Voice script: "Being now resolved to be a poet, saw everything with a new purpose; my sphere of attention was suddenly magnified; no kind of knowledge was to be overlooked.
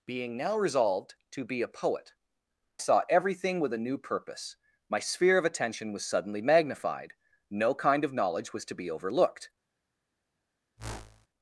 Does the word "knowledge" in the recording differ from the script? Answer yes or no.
no